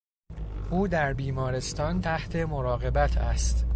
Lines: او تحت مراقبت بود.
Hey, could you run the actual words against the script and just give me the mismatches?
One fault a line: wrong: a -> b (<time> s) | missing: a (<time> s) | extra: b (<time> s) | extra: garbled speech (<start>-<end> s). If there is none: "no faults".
extra: در بیمارستان (0.9 s)
wrong: بود -> است (3.2 s)